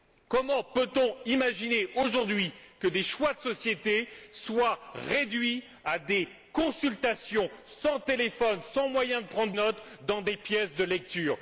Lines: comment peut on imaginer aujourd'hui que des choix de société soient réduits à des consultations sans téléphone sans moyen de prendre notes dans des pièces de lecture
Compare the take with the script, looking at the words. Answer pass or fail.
pass